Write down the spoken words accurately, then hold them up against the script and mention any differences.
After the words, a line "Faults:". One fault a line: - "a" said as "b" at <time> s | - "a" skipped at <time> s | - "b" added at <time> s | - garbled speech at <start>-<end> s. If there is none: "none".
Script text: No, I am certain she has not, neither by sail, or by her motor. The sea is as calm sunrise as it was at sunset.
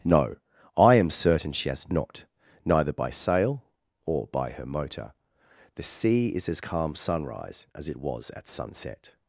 No, I am certain she has not, neither by sail, or by her motor. The sea is as calm sunrise as it was at sunset.
Faults:
none